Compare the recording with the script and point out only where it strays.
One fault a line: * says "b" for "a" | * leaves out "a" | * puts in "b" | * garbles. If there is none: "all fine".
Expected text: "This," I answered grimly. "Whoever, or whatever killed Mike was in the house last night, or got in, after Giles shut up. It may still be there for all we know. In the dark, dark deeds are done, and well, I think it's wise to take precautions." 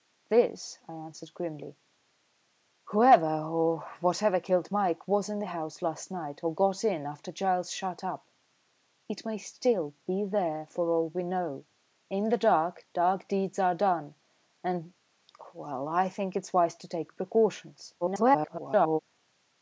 * garbles